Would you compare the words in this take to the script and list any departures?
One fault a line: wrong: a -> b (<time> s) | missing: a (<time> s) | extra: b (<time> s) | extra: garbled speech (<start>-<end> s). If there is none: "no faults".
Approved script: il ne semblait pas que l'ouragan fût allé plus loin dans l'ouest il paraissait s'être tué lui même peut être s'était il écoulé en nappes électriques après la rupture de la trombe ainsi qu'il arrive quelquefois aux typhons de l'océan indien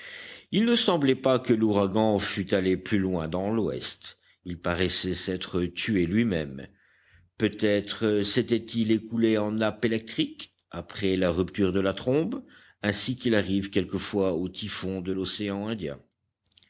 no faults